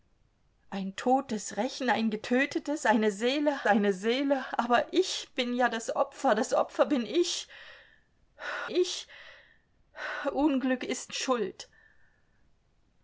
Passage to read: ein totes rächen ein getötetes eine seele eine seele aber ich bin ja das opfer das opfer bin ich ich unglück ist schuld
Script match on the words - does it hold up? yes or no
yes